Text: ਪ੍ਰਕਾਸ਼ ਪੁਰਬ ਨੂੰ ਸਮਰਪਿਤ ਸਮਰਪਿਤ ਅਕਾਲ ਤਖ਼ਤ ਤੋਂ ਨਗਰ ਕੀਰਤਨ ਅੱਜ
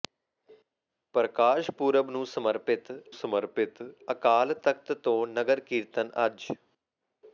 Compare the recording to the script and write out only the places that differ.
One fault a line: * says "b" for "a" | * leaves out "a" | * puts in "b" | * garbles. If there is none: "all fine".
all fine